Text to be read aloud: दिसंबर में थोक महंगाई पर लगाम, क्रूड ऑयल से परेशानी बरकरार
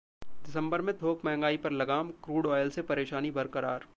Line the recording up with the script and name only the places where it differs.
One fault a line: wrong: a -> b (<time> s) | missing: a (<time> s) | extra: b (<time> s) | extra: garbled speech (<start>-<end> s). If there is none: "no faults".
no faults